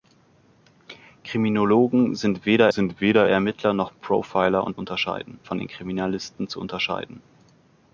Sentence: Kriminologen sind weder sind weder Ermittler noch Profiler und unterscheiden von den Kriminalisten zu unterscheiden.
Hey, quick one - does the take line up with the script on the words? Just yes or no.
yes